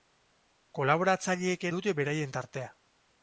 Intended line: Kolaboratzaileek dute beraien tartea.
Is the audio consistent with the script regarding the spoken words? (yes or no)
yes